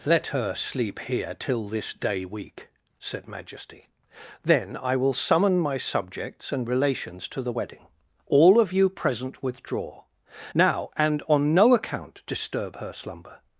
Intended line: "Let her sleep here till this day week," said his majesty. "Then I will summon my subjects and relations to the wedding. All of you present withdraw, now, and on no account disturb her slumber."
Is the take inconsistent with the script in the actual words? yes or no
yes